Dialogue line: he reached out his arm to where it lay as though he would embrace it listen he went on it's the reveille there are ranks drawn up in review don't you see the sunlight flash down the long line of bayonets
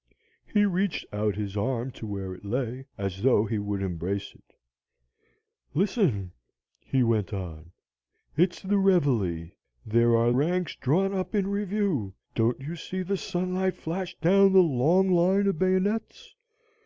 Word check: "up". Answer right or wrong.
right